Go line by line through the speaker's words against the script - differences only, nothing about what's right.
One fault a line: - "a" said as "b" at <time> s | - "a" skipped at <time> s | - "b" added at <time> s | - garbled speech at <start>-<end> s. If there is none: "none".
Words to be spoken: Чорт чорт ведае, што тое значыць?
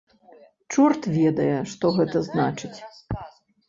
- "чорт" skipped at 1.0 s
- "тое" said as "гэта" at 2.0 s